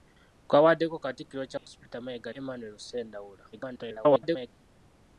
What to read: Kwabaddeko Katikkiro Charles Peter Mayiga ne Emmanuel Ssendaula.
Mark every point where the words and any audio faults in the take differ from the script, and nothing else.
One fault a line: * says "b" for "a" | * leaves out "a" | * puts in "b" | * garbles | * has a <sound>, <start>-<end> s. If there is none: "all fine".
* has a dropout, 1.6-1.7 s
* leaves out "ne"
* garbles